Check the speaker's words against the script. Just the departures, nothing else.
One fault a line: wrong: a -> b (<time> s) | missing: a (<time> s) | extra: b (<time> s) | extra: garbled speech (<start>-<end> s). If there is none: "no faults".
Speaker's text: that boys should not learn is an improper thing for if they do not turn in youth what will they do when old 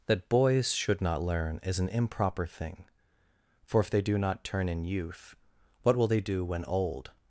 no faults